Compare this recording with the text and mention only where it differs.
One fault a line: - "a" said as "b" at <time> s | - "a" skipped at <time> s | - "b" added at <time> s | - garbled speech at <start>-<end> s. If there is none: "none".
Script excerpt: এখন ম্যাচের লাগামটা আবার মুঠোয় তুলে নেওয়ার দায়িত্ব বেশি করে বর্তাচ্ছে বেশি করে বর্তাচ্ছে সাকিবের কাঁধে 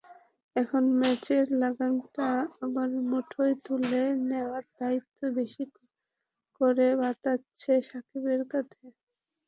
- "বেশি করে বর্তাচ্ছে" skipped at 7.7 s